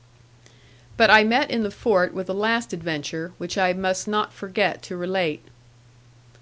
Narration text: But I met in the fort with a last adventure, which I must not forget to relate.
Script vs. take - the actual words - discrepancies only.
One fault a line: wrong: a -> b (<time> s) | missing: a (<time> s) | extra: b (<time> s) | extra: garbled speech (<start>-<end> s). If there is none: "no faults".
no faults